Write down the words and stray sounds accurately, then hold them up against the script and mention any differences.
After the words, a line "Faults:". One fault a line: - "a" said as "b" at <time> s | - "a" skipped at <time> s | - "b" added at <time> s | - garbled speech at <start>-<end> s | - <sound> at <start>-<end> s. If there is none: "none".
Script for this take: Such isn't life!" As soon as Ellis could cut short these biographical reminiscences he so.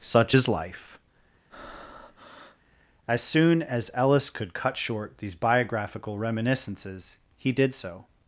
Such is life!" As soon as Ellis could cut short these biographical reminiscences he did so.
Faults:
- "isn't" said as "is" at 0.3 s
- breath at 1.5-2.6 s
- "did" added at 7.5 s